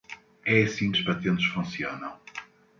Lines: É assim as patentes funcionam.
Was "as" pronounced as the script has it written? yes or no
yes